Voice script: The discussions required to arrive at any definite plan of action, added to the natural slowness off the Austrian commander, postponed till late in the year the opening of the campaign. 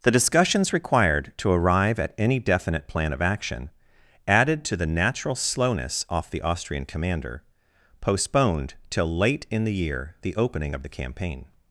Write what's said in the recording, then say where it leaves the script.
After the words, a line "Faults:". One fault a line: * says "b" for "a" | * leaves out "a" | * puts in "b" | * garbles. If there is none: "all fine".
The discussions required to arrive at any definite plan of action, added to the natural slowness off the Austrian commander, postponed till late in the year the opening of the campaign.
Faults:
all fine